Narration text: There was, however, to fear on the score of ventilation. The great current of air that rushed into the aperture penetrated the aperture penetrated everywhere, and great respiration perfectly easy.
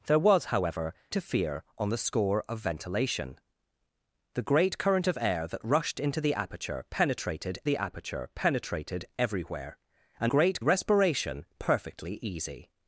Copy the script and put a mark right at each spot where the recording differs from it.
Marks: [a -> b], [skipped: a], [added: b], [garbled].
There was, however, to fear on the score of ventilation. The great current of air that rushed into the aperture penetrated the aperture penetrated everywhere, and great respiration perfectly easy.